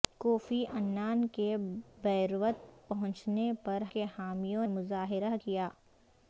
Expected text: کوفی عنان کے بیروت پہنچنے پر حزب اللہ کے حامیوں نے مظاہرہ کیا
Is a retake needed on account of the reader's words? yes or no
yes